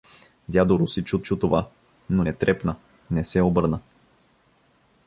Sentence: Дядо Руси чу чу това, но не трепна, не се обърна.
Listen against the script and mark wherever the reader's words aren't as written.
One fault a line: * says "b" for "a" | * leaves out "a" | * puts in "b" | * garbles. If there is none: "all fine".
all fine